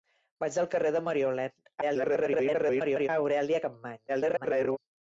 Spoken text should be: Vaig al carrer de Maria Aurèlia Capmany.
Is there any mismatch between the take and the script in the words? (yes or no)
yes